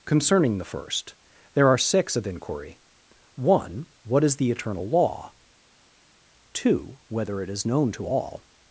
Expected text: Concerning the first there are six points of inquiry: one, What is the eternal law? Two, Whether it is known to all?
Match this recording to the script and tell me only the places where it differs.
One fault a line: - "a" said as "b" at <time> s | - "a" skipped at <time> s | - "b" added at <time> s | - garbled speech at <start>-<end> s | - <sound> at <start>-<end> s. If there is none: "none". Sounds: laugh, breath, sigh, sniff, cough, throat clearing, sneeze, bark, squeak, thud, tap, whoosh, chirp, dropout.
- "points" skipped at 2.1 s